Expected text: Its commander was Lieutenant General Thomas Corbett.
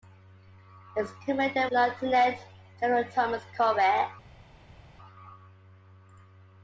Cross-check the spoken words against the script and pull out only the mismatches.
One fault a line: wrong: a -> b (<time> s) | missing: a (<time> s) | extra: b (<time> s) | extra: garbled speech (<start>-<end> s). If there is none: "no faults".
missing: was (1.7 s)